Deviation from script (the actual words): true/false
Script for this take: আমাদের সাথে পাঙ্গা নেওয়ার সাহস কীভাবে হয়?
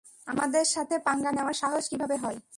false